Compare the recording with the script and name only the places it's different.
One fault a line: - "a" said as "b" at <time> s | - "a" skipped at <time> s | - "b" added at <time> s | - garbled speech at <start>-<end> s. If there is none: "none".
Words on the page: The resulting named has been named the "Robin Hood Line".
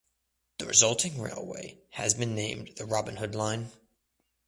- "named" said as "railway" at 1.2 s